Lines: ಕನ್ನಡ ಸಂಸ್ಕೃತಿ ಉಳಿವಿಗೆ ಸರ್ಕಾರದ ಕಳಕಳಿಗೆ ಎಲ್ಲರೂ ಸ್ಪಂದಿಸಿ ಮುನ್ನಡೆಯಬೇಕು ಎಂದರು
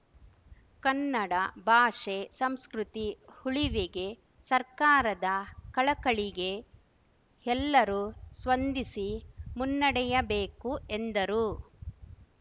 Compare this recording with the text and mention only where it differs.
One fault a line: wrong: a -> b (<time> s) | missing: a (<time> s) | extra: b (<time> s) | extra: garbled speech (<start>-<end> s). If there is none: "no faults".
extra: ಭಾಷೆ (1.6 s)